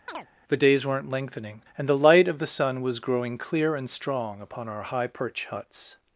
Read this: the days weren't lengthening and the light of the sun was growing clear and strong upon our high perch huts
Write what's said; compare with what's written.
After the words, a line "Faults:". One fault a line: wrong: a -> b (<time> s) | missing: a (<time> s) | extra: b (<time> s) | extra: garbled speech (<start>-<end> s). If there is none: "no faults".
the days weren't lengthening and the light of the sun was growing clear and strong upon our high perch huts
Faults:
no faults